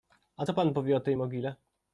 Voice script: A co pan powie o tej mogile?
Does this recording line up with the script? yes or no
yes